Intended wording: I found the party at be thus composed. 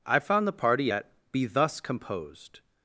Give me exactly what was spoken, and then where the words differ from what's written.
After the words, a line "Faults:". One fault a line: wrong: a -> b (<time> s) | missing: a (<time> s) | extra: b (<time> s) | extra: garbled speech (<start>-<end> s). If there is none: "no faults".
I found the party at be thus composed.
Faults:
no faults